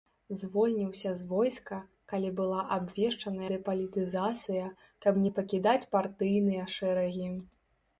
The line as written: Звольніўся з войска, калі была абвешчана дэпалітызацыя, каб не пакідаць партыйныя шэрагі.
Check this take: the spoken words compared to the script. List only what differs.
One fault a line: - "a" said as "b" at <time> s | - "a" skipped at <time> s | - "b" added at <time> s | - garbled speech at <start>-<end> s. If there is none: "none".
none